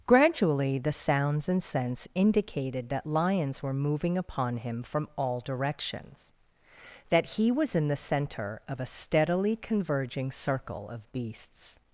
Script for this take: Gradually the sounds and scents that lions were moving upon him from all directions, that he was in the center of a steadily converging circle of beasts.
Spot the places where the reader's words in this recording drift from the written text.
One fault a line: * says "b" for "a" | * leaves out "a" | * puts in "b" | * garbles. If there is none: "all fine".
* puts in "indicated"